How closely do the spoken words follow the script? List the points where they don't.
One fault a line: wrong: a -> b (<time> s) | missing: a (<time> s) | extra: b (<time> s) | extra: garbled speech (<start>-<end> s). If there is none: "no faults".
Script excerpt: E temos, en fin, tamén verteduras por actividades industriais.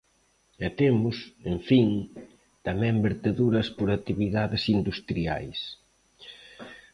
no faults